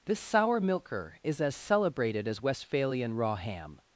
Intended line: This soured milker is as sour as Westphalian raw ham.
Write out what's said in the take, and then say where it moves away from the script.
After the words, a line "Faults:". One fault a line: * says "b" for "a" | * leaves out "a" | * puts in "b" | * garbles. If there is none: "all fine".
This sour milker is as celebrated as Westphalian raw ham.
Faults:
* says "sour" for "soured"
* says "celebrated" for "sour"